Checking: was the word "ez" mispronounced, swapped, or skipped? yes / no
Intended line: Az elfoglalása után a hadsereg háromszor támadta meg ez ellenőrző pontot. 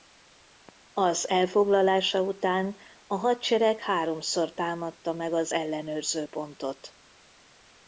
yes